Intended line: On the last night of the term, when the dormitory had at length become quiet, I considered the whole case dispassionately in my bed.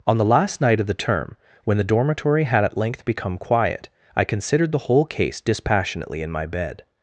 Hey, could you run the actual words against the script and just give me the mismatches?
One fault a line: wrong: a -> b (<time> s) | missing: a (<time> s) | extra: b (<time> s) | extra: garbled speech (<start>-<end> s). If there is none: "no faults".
no faults